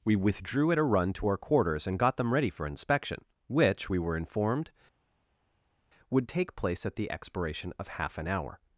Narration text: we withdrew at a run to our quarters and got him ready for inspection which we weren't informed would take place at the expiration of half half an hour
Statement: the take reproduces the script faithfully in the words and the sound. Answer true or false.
false